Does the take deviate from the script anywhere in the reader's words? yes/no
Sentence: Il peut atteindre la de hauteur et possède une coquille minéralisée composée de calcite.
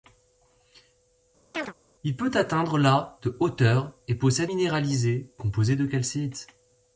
yes